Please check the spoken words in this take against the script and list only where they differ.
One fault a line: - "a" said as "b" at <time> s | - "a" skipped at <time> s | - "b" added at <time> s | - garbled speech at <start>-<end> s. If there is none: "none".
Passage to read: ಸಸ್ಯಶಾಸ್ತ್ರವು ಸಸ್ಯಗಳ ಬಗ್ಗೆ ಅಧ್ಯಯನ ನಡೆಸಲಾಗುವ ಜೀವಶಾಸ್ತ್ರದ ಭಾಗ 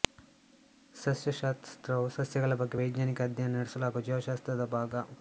- "ವೈಜ್ಞಾನಿಕ" added at 2.8 s